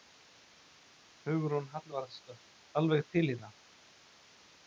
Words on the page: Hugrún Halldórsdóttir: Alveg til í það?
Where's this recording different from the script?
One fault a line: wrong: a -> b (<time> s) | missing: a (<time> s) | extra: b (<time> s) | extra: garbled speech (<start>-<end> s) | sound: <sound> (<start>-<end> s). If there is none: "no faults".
no faults